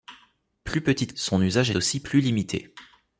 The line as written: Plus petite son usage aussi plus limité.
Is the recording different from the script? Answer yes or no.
no